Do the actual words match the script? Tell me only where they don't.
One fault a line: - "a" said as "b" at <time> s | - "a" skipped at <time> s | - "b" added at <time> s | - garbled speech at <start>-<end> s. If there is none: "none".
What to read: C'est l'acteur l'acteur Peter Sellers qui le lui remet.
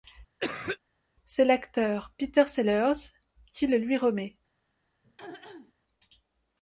- "l'acteur" skipped at 2.1 s